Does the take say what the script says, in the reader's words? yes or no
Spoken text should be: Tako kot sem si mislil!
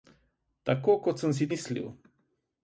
yes